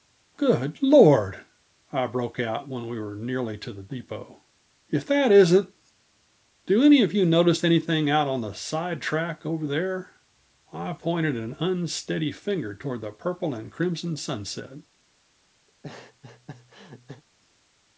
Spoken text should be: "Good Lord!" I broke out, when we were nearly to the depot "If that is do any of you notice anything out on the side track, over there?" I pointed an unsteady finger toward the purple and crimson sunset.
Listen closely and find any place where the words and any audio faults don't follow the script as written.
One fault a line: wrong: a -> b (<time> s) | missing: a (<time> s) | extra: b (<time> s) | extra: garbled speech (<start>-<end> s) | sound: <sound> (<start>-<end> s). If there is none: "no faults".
wrong: is -> isn't (5.3 s)
sound: laugh (15.7-17.2 s)